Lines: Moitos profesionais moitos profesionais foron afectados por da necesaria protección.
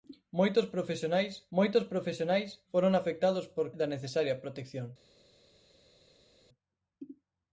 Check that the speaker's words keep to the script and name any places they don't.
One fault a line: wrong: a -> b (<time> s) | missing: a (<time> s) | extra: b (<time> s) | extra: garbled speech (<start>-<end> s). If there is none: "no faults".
no faults